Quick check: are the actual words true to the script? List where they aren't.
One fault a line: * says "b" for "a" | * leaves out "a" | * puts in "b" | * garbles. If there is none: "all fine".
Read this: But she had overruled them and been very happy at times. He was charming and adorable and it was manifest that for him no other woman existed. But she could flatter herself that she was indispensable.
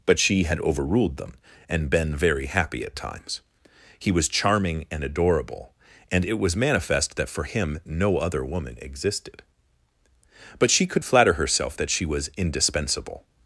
all fine